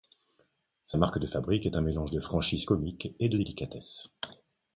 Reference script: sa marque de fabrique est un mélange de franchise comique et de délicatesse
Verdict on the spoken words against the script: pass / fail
pass